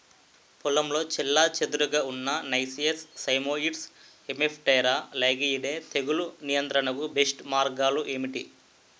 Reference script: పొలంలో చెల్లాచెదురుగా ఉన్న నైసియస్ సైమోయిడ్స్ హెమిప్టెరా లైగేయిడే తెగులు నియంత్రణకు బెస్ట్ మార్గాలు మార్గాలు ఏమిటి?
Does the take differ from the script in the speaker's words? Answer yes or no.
yes